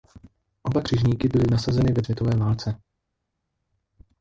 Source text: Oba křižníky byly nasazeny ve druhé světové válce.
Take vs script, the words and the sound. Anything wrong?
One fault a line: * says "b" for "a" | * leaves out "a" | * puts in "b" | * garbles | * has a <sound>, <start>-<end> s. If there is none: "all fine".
* leaves out "druhé"